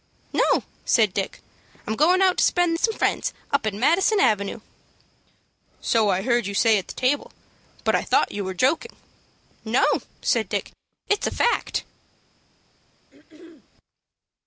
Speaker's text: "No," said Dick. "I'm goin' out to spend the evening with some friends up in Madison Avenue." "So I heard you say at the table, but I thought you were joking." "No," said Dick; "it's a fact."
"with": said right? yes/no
no